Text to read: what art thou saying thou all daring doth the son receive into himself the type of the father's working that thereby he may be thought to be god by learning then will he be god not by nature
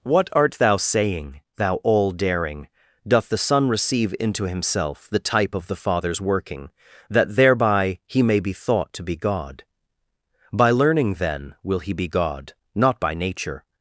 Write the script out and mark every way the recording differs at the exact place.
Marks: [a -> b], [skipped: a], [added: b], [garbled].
what art thou saying thou all daring doth the son receive into himself the type of the father's working that thereby he may be thought to be god by learning then will he be god not by nature